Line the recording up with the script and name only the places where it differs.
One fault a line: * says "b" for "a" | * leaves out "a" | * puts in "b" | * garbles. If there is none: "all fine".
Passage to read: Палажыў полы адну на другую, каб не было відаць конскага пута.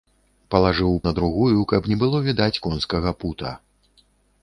* leaves out "полы адну"